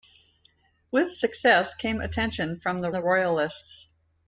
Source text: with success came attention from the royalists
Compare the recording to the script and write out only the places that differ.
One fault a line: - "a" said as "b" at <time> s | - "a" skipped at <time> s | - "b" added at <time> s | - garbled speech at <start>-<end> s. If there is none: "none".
- "the" added at 2.9 s